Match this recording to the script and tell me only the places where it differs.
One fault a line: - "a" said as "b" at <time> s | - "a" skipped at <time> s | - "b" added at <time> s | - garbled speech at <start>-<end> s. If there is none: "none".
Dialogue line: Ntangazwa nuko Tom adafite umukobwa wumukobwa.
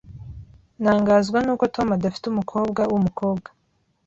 none